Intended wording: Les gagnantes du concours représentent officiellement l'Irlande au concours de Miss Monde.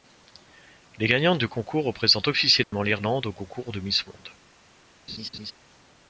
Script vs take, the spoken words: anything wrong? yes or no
no